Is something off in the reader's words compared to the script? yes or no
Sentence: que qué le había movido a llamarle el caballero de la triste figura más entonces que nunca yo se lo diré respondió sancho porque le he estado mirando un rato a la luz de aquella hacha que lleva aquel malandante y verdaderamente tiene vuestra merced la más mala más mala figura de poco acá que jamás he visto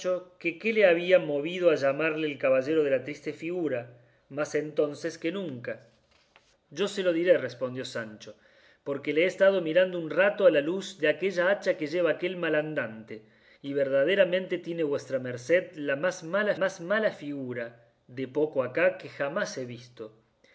no